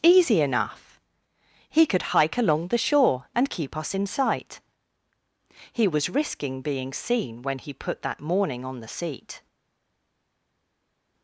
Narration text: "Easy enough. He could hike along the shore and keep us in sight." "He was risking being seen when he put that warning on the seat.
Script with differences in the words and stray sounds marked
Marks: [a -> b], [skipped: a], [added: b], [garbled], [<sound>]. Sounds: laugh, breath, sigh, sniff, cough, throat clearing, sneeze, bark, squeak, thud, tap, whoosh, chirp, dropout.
"Easy enough. He could hike along the shore and keep us in sight." "He was risking being seen when he put that [warning -> morning] on the seat.